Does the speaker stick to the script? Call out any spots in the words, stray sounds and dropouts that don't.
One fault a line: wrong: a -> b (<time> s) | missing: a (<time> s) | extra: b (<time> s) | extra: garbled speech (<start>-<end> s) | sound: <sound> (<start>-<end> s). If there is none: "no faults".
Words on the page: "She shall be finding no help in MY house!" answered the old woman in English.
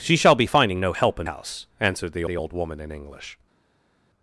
missing: MY (1.3 s)
extra: the (2.2 s)